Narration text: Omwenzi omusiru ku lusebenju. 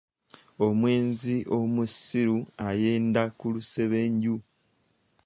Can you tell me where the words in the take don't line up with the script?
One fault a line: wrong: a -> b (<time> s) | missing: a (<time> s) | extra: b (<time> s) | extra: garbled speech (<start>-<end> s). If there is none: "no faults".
extra: ayenda (2.7 s)